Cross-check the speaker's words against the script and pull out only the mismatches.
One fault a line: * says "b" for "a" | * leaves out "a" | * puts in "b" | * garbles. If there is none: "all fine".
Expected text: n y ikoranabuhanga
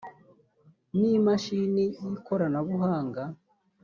* puts in "imashini"